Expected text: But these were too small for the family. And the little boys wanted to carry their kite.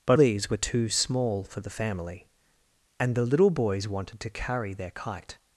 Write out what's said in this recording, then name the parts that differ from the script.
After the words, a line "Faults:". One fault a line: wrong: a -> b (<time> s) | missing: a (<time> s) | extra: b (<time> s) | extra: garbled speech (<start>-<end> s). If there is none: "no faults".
But these were too small for the family. And the little boys wanted to carry their kite.
Faults:
no faults